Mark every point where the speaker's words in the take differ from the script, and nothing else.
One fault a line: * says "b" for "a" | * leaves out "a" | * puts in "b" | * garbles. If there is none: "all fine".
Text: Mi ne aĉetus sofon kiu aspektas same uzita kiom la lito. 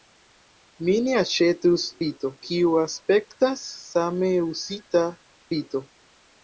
* says "lito" for "sofon"
* leaves out "kiom la"